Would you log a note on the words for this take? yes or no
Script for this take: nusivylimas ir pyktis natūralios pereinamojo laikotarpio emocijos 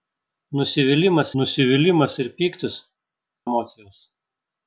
yes